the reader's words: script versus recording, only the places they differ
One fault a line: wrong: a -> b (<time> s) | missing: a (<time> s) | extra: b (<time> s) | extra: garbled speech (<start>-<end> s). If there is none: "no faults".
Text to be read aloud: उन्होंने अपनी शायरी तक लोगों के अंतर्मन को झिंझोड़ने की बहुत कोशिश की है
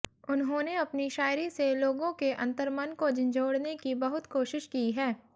wrong: तक -> से (1.5 s)